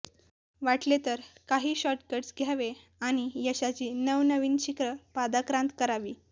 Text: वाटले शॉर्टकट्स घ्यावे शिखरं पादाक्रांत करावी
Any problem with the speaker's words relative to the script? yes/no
yes